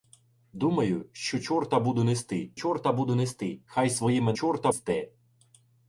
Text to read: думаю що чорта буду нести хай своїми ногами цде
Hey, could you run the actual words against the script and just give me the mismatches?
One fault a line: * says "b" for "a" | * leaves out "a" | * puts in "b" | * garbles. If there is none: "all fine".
* puts in "чорта буду нести"
* says "чорта" for "ногами"